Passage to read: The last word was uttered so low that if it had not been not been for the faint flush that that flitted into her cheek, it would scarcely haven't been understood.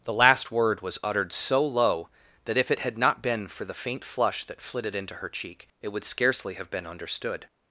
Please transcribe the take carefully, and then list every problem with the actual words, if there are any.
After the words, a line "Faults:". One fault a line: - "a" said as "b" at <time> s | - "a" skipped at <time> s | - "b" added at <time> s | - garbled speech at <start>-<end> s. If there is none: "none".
The last word was uttered so low that if it had not been for the faint flush that flitted into her cheek, it would scarcely have been understood.
Faults:
- "not been" skipped at 3.5 s
- "that" skipped at 4.6 s
- "haven't" said as "have" at 6.5 s